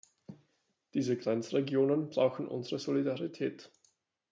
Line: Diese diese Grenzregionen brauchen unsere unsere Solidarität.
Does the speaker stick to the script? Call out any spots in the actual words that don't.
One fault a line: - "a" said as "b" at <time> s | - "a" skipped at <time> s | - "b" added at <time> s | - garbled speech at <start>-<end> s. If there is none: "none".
- "diese" skipped at 1.1 s
- "unsere" skipped at 2.8 s